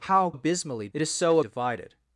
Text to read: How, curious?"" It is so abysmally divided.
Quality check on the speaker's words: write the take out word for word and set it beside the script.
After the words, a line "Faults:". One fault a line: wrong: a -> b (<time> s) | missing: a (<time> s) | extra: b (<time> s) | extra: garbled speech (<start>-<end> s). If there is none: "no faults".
How, abysmally?"" It is so divided.
Faults:
wrong: curious -> abysmally (0.3 s)
missing: abysmally (1.4 s)